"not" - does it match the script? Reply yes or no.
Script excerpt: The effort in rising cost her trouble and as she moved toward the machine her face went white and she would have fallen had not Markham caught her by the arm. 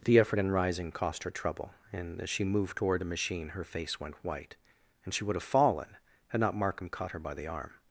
yes